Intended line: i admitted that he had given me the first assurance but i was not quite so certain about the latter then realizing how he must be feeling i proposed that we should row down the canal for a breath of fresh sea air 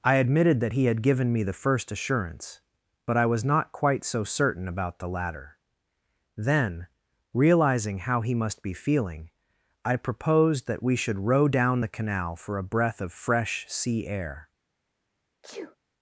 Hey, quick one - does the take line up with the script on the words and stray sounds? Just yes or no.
no